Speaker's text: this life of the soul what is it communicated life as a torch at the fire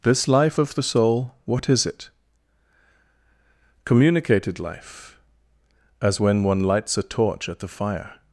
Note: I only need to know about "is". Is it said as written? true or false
true